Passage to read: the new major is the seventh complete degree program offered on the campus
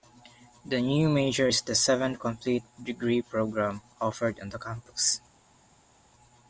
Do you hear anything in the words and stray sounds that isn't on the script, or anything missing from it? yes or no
no